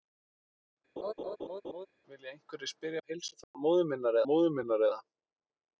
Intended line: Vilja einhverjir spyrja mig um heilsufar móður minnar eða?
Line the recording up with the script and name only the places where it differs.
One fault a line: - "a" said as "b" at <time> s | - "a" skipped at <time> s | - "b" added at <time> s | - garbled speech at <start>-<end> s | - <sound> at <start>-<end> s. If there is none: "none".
- laugh at 1.0-1.9 s
- "mig" skipped at 3.0 s
- dropout at 3.4-3.5 s
- "móður minnar" added at 4.3 s